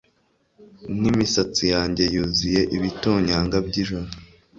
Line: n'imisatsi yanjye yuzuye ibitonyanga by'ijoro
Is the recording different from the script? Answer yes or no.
no